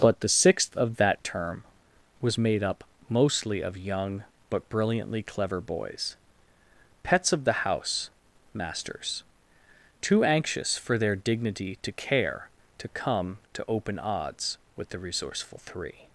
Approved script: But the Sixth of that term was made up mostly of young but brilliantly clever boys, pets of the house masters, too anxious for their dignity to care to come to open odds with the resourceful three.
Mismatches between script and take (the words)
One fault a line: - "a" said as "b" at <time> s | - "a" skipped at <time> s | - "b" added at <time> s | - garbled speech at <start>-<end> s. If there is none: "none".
none